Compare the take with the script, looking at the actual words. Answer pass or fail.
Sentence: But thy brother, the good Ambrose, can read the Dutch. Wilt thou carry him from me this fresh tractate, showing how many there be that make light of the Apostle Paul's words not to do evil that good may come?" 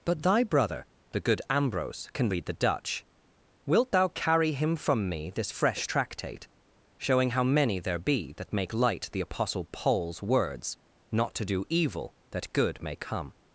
fail